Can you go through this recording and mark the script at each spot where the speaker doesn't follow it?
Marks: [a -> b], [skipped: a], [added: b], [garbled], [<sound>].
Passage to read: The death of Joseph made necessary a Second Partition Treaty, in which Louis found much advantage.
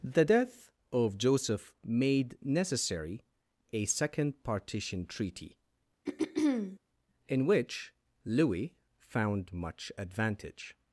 The death of Joseph made necessary a Second Partition Treaty, [throat clearing] in which Louis found much advantage.